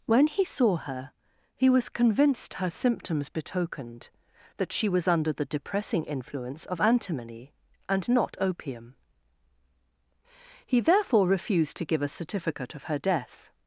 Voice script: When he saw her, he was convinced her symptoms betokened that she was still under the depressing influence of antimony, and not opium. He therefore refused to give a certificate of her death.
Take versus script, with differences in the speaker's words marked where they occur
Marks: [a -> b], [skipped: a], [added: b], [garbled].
When he saw her, he was convinced her symptoms betokened that she was [skipped: still] under the depressing influence of antimony, and not opium. He therefore refused to give a certificate of her death.